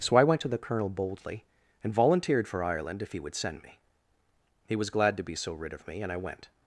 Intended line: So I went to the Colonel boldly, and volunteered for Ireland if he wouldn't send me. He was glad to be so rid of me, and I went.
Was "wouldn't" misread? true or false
true